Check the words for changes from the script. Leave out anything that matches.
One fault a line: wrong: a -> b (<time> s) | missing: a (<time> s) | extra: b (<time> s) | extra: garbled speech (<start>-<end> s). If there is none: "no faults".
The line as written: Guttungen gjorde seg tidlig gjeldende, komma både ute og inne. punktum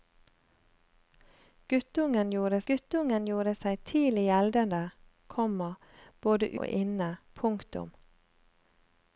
extra: guttungen gjorde (2.7 s)
missing: ute (6.5 s)